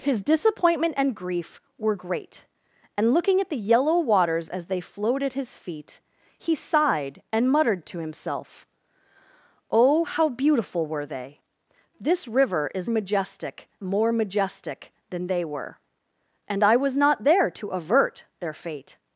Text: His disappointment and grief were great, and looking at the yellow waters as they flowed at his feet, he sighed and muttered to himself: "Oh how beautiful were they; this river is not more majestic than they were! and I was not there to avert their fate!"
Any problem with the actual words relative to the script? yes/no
yes